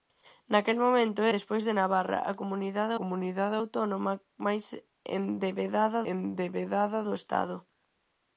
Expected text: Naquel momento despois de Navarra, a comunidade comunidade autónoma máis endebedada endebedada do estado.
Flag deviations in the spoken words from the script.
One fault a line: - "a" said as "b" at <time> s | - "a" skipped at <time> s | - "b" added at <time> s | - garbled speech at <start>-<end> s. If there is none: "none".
none